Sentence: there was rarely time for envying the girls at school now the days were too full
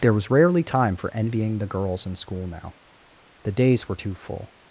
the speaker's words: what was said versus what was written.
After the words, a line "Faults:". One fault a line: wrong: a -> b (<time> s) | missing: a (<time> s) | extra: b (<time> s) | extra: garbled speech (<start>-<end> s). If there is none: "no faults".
there was rarely time for envying the girls in school now the days were too full
Faults:
wrong: at -> in (2.1 s)